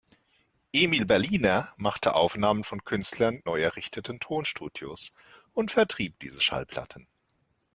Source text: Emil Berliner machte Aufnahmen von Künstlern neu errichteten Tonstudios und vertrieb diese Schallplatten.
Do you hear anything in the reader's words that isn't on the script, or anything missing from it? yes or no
no